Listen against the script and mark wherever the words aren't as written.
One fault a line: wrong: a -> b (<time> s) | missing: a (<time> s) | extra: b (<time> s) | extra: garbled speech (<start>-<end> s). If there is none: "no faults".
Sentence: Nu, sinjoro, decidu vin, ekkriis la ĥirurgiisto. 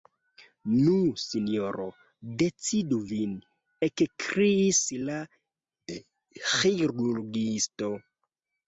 no faults